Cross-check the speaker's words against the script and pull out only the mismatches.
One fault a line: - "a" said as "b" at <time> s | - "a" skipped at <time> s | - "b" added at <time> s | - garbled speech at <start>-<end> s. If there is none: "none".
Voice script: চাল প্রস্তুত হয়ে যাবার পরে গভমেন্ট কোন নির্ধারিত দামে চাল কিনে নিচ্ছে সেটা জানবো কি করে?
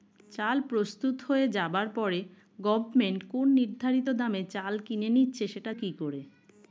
- "জানবো" skipped at 5.7 s